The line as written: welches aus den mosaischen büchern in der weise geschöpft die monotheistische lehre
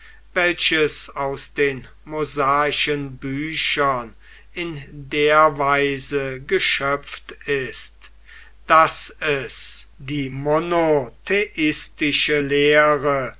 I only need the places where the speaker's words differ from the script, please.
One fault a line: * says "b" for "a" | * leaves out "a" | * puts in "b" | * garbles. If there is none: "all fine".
* puts in "ist daß es"